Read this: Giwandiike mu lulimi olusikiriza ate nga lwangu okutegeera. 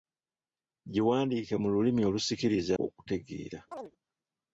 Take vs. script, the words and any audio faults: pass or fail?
fail